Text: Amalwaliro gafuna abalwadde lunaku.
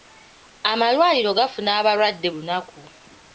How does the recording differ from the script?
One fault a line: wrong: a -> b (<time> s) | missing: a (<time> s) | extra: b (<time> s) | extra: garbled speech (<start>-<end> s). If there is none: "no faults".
no faults